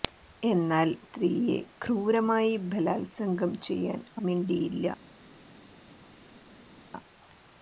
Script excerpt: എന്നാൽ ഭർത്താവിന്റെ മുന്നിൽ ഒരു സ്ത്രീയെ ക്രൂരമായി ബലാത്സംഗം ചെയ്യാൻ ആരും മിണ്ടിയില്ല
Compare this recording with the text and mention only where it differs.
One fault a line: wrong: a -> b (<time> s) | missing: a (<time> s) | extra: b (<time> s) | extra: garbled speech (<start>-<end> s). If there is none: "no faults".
missing: ഭർത്താവിന്റെ മുന്നിൽ ഒരു (0.9 s)
missing: ആരും (4.0 s)